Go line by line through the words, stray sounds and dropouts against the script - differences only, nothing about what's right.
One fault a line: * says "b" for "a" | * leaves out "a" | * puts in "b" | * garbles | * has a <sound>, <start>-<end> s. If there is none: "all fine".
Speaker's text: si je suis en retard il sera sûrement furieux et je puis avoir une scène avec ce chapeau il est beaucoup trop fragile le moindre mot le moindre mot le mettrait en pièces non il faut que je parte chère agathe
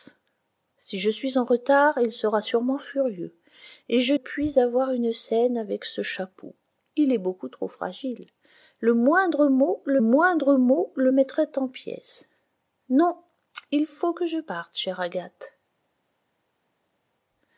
all fine